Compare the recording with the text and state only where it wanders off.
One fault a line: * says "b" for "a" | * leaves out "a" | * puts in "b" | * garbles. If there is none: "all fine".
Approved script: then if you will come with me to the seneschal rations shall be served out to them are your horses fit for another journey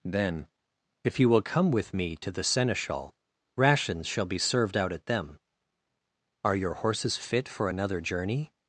* says "at" for "to"